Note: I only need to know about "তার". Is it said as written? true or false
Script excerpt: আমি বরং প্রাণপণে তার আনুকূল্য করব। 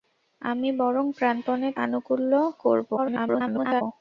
false